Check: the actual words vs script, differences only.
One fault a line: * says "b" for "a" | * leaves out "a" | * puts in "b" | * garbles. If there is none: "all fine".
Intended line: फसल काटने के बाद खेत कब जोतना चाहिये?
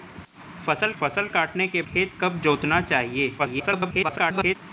* puts in "फसल"
* leaves out "बाद"
* garbles